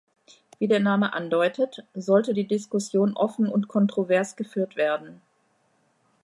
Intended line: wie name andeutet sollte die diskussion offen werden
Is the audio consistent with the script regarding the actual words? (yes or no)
no